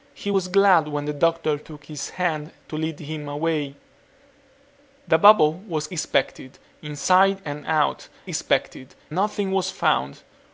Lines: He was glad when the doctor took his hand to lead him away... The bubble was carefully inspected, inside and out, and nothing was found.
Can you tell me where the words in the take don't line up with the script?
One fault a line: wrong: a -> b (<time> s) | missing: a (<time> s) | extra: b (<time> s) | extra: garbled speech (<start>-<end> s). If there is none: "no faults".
missing: carefully (5.9 s)
wrong: and -> inspected (8.3 s)